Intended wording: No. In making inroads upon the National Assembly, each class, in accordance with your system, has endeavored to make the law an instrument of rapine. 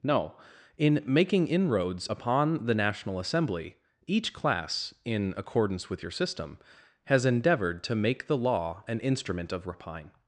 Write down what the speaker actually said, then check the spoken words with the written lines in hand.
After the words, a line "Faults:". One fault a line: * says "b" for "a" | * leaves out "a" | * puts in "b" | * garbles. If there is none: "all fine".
No. In making inroads upon the National Assembly, each class, in accordance with your system, has endeavored to make the law an instrument of rapine.
Faults:
all fine